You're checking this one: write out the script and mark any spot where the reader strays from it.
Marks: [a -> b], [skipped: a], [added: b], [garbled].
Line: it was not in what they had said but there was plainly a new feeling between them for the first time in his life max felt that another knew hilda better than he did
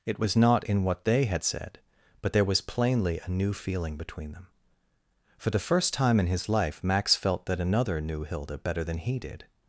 it was not in what they had said but there was plainly a new feeling between them for the first time in his life max felt that another knew hilda better than he did